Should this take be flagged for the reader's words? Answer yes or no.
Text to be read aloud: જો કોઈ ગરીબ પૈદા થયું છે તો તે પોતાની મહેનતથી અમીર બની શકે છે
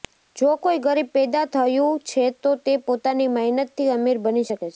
no